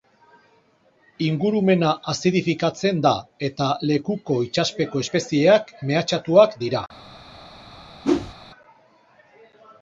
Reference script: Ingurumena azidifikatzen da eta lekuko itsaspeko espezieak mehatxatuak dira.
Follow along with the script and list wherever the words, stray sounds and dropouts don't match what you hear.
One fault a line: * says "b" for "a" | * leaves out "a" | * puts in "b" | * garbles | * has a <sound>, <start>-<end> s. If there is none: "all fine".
* has a whoosh, 8.0-8.3 s